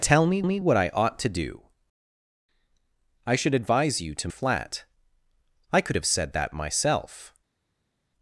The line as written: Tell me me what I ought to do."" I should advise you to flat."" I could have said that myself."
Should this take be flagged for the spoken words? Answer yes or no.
no